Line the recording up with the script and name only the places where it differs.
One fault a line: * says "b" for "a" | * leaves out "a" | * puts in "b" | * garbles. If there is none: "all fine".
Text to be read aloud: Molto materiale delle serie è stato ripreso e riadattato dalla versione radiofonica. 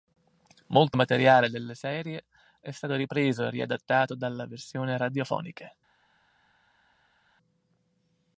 all fine